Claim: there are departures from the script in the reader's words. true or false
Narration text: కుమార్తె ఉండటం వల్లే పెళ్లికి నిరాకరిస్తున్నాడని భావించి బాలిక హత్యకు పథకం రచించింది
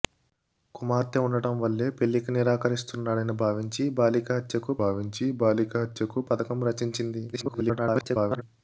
true